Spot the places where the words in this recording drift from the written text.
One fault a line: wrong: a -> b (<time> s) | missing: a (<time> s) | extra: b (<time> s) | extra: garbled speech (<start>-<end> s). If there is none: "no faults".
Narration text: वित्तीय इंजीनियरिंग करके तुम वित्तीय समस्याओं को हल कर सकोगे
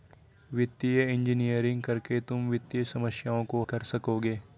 missing: हल (3.6 s)